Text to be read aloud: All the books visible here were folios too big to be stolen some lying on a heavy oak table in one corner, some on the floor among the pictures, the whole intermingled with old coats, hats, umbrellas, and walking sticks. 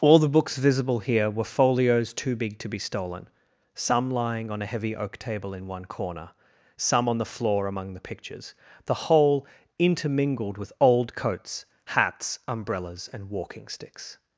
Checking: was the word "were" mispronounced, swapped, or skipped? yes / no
no